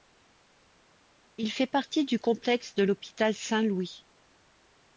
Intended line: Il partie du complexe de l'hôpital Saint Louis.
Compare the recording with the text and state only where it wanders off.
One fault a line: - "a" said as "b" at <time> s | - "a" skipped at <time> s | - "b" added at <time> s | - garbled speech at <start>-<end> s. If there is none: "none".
- "fait" added at 1.5 s